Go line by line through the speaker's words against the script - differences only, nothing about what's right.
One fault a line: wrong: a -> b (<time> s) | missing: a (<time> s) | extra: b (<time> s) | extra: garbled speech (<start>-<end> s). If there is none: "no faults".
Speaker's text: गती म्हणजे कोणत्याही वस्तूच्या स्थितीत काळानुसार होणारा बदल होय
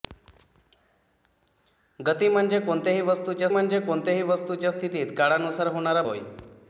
extra: म्हणजे कोणत्याही वस्तूच्या (3.5 s)
missing: बदल (6.0 s)